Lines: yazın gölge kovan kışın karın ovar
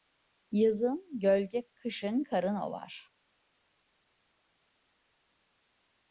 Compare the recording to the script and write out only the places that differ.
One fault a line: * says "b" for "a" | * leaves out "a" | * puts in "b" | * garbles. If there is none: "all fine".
* leaves out "kovan"